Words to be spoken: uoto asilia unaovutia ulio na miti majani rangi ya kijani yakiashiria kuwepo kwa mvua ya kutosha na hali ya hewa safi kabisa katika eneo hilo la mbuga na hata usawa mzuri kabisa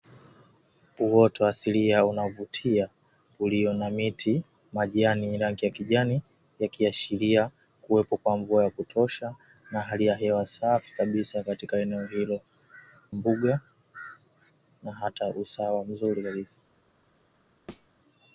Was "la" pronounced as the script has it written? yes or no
no